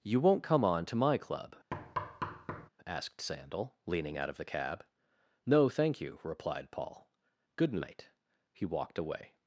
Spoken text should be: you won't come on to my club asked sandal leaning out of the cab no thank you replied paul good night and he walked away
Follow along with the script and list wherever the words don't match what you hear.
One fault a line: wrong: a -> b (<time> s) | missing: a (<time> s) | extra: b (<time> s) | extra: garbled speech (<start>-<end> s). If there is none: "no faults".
missing: and (8.1 s)